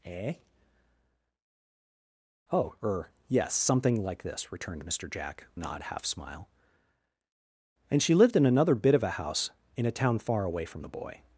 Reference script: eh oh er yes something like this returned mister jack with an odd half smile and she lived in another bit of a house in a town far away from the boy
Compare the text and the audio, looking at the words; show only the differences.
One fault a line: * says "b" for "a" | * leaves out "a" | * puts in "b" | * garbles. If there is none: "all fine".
* leaves out "with"